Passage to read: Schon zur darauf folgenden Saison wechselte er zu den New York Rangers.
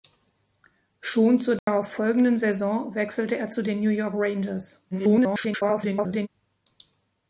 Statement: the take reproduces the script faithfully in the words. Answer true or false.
false